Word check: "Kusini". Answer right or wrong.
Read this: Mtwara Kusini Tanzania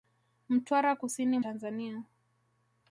right